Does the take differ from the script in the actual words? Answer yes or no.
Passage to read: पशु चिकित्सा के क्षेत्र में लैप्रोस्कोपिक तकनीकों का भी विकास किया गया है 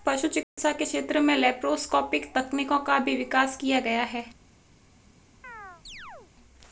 no